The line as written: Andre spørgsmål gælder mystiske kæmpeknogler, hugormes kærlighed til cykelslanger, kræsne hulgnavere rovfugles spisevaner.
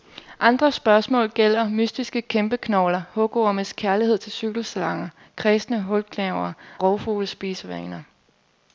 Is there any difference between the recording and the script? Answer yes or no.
no